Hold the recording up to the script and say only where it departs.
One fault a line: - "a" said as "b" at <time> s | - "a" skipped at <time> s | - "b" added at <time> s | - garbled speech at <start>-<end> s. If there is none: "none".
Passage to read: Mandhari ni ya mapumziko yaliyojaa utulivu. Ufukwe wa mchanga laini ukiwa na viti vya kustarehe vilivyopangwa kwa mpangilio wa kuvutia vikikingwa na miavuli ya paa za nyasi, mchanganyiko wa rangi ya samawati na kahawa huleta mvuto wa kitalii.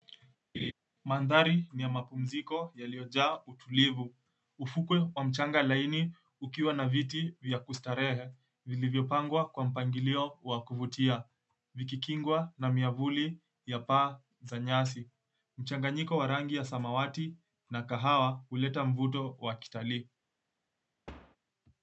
none